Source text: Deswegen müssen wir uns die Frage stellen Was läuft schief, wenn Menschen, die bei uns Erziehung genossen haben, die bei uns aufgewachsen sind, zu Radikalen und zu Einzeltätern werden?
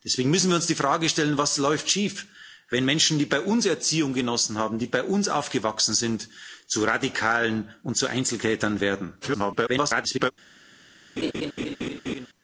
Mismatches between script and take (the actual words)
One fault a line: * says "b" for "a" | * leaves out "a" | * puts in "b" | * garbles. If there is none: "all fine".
* garbles